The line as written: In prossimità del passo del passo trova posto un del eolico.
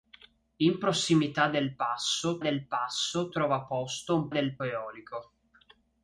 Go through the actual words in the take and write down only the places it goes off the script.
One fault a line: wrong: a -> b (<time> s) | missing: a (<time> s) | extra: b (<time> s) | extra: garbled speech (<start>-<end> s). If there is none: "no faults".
no faults